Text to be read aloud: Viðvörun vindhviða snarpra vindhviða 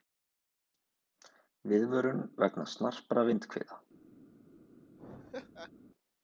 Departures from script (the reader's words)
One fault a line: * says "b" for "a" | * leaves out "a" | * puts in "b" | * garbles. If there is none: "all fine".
* says "vegna" for "vindhviða"